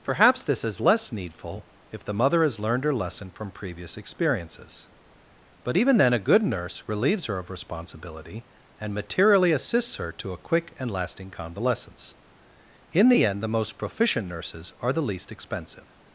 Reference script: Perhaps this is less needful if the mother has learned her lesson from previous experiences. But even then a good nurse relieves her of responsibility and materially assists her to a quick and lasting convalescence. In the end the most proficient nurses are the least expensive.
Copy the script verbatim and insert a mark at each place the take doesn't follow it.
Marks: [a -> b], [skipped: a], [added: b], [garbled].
Perhaps this is less needful if the mother has learned her lesson from previous experiences. But even then a good nurse relieves her of responsibility and materially assists her to a quick and lasting convalescence. In the end the most proficient nurses are the least expensive.